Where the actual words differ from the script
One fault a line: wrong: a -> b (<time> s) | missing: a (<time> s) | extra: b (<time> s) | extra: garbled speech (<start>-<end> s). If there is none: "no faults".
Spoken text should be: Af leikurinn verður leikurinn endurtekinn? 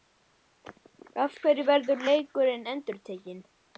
wrong: leikurinn -> hverju (1.4 s)